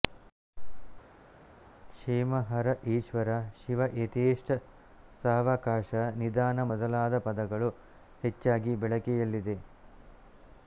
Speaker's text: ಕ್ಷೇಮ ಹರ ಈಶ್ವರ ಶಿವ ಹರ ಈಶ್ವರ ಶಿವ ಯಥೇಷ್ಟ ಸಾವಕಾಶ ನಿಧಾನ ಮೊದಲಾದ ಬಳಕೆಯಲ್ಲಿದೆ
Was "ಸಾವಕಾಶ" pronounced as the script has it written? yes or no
yes